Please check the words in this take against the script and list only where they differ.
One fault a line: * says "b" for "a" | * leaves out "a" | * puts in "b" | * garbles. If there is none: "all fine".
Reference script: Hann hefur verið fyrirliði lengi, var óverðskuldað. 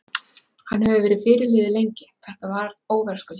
* puts in "þetta"